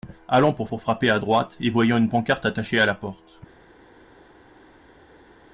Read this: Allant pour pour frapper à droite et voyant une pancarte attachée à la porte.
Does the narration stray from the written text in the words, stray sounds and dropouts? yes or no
no